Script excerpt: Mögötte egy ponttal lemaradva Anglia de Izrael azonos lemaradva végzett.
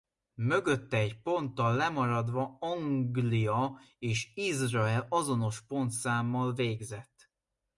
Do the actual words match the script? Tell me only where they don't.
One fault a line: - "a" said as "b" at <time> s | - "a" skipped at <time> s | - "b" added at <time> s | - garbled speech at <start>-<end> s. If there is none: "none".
- "de" said as "és" at 4.0 s
- "lemaradva" said as "pontszámmal" at 5.6 s